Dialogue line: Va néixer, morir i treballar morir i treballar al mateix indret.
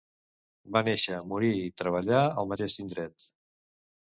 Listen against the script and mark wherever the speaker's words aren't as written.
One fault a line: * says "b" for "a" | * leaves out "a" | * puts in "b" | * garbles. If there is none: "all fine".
* leaves out "morir i treballar"